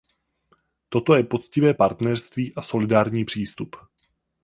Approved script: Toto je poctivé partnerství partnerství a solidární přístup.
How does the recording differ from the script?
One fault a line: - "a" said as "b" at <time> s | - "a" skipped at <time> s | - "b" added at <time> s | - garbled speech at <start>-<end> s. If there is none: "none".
- "partnerství" skipped at 2.5 s